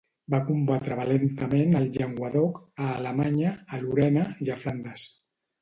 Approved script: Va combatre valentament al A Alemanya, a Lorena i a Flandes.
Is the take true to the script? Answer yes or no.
no